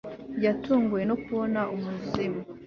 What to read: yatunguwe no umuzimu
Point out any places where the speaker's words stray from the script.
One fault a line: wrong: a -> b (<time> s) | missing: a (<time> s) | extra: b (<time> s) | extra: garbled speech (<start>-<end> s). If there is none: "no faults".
extra: kubona (1.2 s)